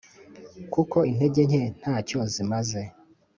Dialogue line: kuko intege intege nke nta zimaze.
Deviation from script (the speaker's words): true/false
true